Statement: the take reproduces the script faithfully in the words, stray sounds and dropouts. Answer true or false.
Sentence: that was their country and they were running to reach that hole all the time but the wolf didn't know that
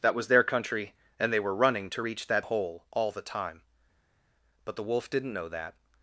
true